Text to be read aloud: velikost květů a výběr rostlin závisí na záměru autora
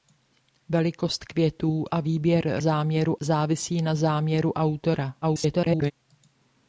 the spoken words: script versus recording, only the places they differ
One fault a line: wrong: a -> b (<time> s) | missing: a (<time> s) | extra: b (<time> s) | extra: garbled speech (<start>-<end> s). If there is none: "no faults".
wrong: rostlin -> záměru (2.6 s)
extra: garbled speech (5.2-5.9 s)